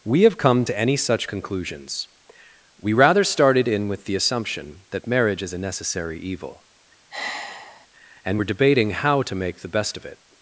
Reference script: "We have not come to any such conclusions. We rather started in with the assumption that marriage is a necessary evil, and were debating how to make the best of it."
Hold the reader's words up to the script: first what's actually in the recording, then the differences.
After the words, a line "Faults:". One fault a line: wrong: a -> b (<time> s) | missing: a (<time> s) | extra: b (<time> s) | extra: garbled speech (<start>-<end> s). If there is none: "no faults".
"We have come to any such conclusions. We rather started in with the assumption that marriage is a necessary evil, and were debating how to make the best of it."
Faults:
missing: not (0.4 s)